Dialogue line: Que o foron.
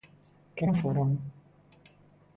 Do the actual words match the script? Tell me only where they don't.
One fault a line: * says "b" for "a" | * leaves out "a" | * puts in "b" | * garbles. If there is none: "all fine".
all fine